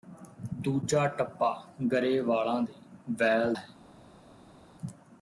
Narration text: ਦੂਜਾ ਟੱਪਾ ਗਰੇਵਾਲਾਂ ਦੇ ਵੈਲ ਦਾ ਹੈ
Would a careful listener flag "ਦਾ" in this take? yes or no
yes